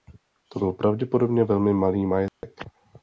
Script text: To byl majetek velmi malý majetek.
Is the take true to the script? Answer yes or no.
no